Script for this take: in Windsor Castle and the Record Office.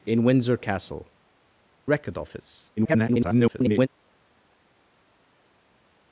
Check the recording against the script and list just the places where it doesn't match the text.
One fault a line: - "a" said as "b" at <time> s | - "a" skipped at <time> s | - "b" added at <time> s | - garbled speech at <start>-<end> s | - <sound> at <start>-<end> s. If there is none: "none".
- "and the" skipped at 1.1 s
- garbled speech at 2.8-3.9 s